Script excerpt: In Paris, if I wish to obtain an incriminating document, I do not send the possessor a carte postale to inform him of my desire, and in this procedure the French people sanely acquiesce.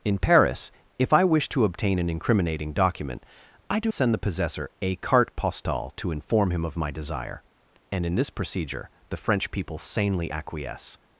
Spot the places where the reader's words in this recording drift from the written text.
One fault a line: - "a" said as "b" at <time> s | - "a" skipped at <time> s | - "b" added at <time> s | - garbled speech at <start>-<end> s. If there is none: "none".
- "not" skipped at 3.9 s